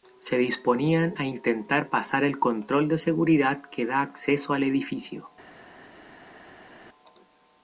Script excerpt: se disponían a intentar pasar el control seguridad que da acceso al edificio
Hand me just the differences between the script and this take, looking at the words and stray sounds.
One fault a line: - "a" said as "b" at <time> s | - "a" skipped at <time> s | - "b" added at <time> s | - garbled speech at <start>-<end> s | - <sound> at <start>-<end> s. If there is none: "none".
- "de" added at 2.9 s